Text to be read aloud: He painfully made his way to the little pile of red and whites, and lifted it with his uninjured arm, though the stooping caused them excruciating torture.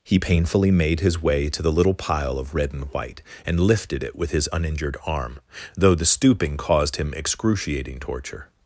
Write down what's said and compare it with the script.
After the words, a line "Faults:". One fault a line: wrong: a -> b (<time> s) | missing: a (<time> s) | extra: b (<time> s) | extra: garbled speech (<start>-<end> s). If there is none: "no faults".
He painfully made his way to the little pile of red and white, and lifted it with his uninjured arm, though the stooping caused him excruciating torture.
Faults:
wrong: whites -> white (2.9 s)
wrong: them -> him (7.0 s)